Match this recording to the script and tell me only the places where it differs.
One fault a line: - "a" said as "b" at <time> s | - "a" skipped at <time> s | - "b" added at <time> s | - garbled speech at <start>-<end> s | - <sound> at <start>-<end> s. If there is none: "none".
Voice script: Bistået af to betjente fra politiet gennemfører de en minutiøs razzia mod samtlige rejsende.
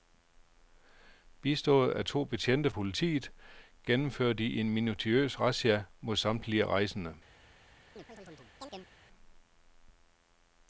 - "fra" skipped at 2.7 s
- chirp at 8.0-8.9 s